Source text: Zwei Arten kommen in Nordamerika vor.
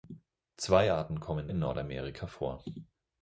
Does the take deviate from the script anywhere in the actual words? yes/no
no